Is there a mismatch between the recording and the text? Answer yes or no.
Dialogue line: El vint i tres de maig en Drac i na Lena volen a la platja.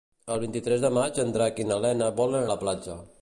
no